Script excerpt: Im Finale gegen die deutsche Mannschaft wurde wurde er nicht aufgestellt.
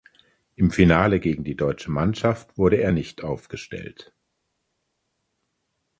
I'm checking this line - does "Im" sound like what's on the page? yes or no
yes